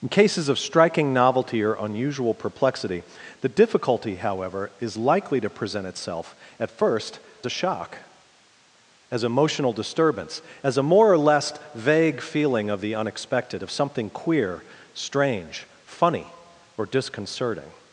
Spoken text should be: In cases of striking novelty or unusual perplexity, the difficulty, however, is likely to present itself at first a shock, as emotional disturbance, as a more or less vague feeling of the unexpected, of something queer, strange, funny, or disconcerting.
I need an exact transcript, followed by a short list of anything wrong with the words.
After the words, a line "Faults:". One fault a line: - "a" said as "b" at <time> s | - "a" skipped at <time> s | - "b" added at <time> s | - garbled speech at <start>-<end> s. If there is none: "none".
In cases of striking novelty or unusual perplexity, the difficulty, however, is likely to present itself at first a shock, as emotional disturbance, as a more or less vague feeling of the unexpected, of something queer, strange, funny, or disconcerting.
Faults:
none